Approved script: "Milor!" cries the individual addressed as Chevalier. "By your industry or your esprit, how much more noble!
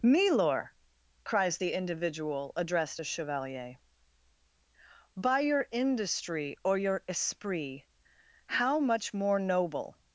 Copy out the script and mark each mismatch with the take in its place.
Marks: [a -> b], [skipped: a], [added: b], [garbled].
"Milor!" cries the individual addressed as Chevalier. "By your industry or your esprit, how much more noble!